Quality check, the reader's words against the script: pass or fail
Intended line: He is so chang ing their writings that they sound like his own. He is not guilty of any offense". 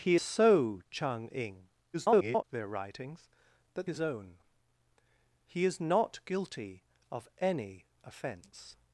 fail